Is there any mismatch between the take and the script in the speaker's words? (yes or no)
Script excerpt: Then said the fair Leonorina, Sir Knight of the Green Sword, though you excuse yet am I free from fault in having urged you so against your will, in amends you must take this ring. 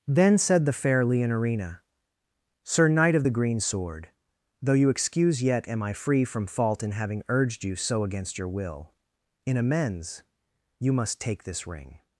no